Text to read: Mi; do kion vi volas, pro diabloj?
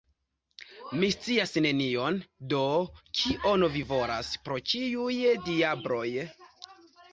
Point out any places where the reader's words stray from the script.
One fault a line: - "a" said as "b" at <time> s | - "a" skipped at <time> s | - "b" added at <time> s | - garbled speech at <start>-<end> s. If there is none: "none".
- "scias nenion" added at 1.1 s
- "ĉiuj" added at 4.7 s